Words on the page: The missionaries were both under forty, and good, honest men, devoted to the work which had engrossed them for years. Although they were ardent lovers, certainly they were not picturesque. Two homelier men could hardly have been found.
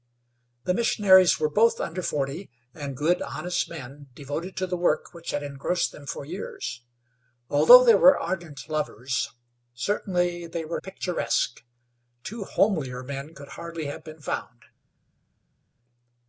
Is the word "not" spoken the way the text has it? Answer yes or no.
no